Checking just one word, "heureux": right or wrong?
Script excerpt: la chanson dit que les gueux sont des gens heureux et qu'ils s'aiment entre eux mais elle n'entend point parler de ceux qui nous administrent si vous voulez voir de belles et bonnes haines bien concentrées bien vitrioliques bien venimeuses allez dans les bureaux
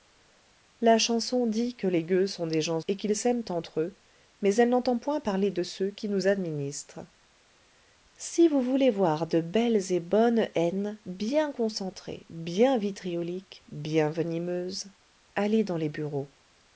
wrong